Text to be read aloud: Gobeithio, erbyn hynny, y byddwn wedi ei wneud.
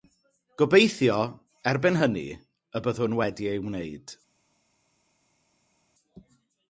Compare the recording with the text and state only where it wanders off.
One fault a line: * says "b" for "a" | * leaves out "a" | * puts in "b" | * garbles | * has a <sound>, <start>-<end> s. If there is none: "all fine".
all fine